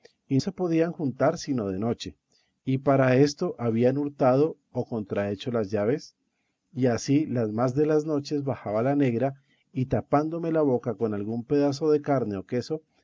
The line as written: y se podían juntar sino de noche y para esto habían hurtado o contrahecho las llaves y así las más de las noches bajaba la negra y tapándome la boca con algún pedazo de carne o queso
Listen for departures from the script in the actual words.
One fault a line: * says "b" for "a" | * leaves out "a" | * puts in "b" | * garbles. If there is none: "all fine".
all fine